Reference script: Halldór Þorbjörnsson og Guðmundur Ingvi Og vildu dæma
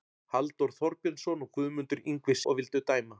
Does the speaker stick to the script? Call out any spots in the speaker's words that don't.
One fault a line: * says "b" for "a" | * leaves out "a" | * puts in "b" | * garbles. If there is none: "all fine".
all fine